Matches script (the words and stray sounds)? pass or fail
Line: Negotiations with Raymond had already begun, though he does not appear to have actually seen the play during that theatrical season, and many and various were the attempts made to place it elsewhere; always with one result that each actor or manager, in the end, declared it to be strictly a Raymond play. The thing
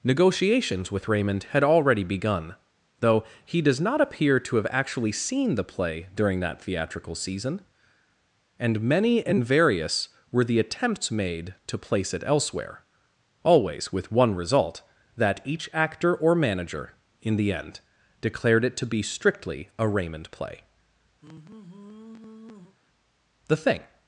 fail